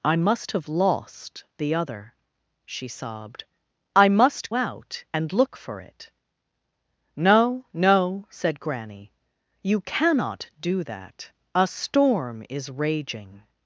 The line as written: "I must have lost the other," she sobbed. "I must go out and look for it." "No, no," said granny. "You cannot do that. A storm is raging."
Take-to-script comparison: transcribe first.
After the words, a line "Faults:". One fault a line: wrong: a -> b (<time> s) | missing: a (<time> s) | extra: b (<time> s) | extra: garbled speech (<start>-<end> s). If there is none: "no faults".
"I must have lost the other," she sobbed. "I must out and look for it." "No, no," said granny. "You cannot do that. A storm is raging."
Faults:
missing: go (4.5 s)